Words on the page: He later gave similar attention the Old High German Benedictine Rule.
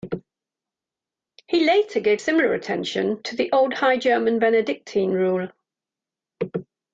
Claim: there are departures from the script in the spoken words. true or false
true